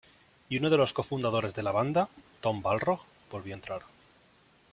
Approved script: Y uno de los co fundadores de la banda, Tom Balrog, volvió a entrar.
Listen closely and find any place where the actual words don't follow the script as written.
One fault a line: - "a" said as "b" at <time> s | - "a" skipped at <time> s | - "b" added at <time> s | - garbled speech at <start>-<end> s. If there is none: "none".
none